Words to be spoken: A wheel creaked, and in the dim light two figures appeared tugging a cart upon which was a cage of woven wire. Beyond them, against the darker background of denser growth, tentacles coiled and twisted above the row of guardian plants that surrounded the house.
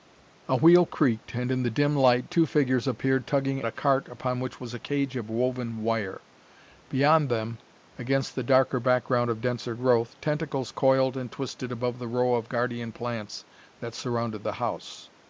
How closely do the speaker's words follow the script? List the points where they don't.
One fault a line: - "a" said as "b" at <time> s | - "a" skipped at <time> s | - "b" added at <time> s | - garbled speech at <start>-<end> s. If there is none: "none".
none